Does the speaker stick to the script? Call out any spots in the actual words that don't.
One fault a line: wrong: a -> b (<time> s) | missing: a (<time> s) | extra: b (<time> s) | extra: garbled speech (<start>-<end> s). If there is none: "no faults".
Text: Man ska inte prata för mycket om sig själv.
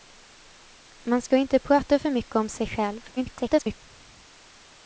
extra: garbled speech (3.2-3.8 s)